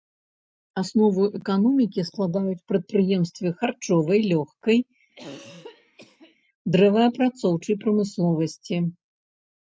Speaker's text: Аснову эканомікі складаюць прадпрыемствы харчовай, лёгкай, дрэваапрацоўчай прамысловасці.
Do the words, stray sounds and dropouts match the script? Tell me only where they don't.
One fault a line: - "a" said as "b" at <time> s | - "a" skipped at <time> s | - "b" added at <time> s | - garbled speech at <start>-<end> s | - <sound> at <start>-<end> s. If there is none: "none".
- throat clearing at 5.1-6.4 s